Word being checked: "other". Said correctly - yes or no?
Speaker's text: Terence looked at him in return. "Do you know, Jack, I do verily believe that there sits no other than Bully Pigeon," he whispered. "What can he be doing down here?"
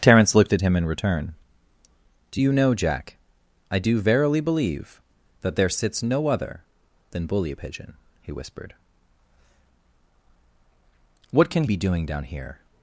yes